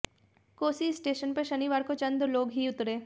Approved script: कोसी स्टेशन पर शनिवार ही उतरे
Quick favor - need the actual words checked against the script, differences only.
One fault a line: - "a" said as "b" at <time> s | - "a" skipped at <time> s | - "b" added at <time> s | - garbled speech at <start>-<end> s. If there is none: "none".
- "को चंद लोग" added at 1.8 s